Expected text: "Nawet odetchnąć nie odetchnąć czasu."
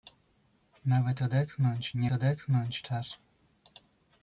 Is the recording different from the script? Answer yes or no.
no